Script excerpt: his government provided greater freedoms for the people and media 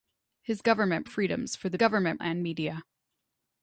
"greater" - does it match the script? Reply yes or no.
no